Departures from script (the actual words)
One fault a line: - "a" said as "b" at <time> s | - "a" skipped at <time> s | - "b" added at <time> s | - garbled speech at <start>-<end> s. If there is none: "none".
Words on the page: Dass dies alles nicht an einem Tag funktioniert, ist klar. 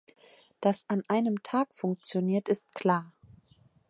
- "dies alles nicht" skipped at 0.9 s